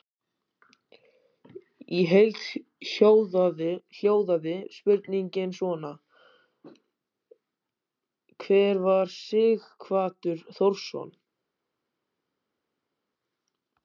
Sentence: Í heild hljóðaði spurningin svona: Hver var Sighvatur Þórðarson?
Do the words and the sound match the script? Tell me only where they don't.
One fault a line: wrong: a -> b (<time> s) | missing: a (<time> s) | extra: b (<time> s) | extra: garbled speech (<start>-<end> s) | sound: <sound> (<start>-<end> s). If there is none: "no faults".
no faults